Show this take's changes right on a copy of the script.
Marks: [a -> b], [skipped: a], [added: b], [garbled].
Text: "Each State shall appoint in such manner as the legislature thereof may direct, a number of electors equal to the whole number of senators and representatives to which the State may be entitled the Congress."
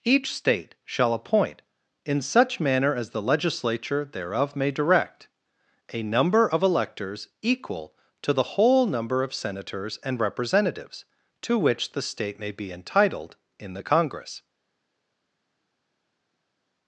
"Each State shall appoint in such manner as the legislature thereof may direct, a number of electors equal to the whole number of senators and representatives to which the State may be entitled [added: in] the Congress."